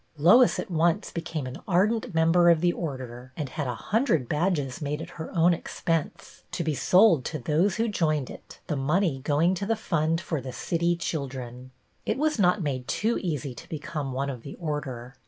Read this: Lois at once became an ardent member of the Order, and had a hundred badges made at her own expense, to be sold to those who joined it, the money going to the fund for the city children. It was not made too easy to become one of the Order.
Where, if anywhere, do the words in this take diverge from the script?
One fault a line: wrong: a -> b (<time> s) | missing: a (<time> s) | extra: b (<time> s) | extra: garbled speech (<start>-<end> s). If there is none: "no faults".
no faults